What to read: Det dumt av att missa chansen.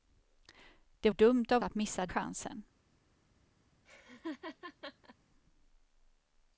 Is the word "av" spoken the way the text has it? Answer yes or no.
yes